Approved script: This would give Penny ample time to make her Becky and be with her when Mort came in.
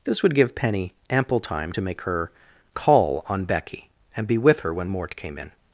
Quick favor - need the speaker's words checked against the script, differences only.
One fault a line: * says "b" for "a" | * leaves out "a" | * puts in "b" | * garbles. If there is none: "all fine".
* puts in "call on"